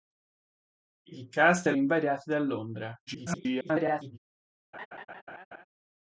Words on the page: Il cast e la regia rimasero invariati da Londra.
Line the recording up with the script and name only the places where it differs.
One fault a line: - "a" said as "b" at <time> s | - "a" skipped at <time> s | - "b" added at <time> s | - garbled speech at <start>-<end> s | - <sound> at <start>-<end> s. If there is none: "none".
- "la regia rimasero" skipped at 1.7 s
- garbled speech at 3.1-4.2 s
- laugh at 4.7-5.6 s